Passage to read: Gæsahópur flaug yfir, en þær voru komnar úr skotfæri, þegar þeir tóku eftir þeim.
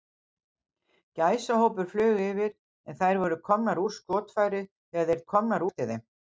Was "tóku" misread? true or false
true